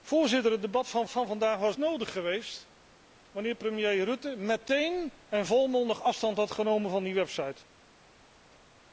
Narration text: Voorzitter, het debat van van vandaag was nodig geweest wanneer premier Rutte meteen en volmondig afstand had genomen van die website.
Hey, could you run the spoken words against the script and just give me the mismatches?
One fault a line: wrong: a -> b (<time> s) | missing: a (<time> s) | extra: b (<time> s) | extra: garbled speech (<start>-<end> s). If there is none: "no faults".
no faults